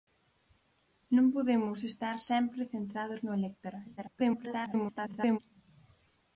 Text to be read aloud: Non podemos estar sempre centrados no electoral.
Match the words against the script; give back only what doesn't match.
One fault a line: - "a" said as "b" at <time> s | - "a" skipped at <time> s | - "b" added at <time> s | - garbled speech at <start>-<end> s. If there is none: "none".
- garbled speech at 4.0-5.4 s